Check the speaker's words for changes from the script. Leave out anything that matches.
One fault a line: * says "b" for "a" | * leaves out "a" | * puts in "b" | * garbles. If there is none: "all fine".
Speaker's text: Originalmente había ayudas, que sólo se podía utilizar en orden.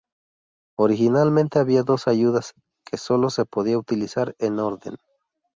* puts in "dos"